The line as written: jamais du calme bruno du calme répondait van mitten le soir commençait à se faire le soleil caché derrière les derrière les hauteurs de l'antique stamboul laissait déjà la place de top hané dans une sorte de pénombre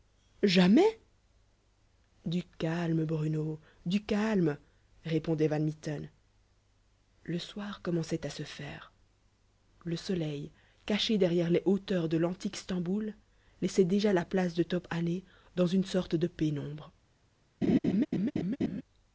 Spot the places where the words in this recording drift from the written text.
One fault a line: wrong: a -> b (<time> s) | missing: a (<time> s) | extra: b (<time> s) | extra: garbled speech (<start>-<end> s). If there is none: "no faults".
missing: derrière les (11.6 s)